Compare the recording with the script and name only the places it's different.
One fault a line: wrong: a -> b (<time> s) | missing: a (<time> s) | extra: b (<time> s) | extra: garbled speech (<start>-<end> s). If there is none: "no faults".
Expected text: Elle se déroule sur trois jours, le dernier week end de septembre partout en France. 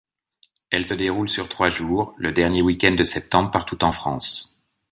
no faults